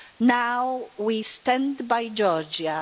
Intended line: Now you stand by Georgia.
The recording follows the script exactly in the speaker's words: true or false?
false